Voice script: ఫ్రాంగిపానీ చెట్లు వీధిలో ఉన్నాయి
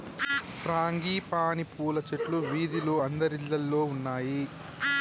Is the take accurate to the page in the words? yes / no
no